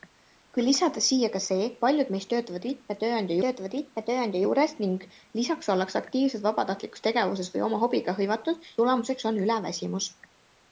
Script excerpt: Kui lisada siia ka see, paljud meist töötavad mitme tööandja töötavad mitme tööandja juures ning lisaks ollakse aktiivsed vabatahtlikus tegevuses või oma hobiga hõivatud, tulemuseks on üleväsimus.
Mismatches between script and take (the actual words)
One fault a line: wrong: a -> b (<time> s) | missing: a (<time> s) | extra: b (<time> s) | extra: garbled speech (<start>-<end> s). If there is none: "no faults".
no faults